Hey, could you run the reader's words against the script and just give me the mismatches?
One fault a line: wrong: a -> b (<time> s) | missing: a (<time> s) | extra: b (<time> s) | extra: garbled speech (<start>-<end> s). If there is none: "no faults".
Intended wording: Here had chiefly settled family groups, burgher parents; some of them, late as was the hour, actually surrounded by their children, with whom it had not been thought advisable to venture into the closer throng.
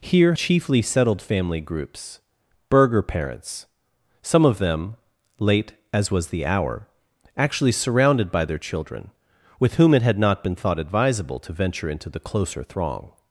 missing: had (0.3 s)